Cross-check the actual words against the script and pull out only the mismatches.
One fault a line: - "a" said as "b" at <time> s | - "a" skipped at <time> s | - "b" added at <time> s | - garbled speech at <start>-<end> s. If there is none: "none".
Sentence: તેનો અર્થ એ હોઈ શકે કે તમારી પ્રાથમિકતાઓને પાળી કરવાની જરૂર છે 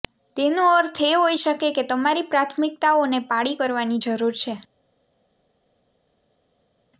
none